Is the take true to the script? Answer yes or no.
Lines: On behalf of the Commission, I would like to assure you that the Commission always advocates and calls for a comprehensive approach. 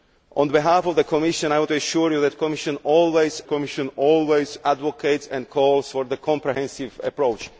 no